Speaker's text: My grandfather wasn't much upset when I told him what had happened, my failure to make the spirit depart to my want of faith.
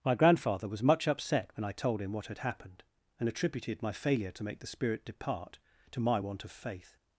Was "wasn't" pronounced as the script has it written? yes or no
no